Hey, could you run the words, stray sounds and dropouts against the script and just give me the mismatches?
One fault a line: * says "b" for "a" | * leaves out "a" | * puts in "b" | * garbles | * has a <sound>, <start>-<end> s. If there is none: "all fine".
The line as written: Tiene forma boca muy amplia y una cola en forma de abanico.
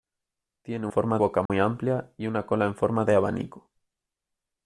* has a dropout, 1.5-1.5 s